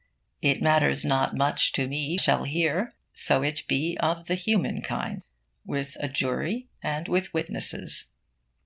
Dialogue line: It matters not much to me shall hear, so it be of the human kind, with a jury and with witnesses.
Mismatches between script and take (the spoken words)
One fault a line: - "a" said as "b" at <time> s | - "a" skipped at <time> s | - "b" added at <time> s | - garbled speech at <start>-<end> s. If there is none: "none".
none